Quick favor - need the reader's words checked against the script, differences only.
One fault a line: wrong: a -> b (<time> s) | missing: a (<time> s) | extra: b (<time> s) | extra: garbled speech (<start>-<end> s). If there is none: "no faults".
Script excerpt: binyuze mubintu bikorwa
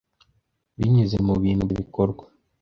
no faults